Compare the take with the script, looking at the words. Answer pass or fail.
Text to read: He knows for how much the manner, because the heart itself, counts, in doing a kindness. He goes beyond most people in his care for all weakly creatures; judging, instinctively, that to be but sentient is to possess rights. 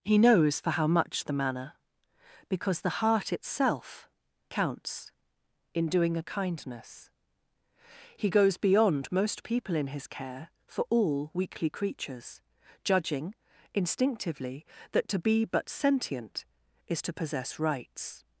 pass